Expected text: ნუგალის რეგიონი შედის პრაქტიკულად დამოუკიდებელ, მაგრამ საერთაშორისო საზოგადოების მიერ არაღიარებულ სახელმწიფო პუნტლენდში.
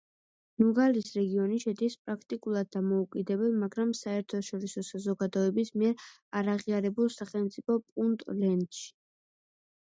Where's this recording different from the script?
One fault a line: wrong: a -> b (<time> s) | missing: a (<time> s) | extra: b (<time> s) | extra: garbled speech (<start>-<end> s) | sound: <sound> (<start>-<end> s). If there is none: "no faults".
no faults